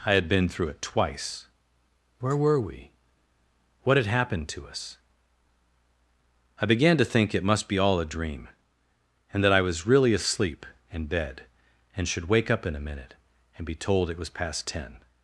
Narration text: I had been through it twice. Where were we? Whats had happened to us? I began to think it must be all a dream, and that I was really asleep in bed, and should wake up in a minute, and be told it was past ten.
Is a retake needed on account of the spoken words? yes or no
yes